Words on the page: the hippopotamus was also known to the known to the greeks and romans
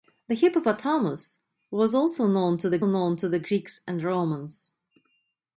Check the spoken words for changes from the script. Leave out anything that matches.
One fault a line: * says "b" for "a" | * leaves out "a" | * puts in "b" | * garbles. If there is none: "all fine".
all fine